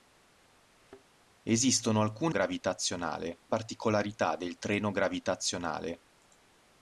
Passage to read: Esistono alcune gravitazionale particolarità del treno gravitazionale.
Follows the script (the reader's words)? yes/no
yes